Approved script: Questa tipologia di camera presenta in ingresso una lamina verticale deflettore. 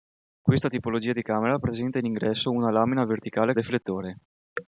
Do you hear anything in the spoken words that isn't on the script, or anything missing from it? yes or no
no